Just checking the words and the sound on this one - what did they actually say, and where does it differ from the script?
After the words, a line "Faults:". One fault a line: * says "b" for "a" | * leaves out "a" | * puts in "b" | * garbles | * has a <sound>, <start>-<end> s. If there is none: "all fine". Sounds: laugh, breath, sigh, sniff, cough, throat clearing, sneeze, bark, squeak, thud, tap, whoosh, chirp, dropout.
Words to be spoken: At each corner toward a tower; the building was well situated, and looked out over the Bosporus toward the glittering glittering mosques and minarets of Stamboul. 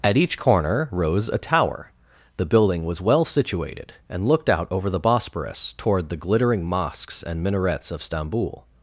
At each corner rose a tower; the building was well situated, and looked out over the Bosporus toward the glittering mosques and minarets of Stamboul.
Faults:
* says "rose" for "toward"
* leaves out "glittering"